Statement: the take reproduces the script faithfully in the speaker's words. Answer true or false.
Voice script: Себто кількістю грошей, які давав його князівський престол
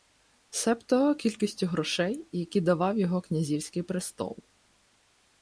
true